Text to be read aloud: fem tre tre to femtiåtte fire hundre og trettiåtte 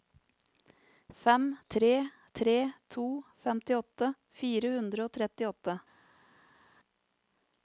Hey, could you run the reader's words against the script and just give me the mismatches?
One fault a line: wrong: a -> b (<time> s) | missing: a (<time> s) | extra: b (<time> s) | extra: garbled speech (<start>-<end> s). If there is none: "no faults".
no faults